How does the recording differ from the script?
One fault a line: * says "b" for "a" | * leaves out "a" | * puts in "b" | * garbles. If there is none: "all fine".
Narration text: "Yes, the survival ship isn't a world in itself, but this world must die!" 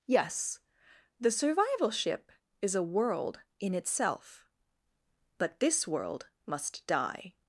* says "is" for "isn't"